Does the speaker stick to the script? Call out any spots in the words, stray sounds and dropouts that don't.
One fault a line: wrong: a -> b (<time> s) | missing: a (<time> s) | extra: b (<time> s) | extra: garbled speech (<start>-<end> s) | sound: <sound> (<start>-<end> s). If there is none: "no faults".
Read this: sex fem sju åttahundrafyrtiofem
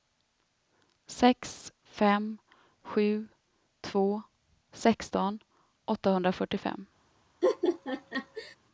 extra: två sexton (3.8 s)
sound: laugh (7.4-8.6 s)